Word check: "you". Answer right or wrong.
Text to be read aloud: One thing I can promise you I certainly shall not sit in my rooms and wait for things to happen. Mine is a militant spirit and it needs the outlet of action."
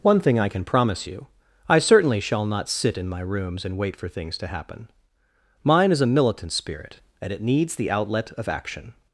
right